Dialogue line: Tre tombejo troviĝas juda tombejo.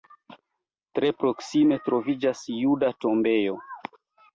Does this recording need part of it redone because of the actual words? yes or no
yes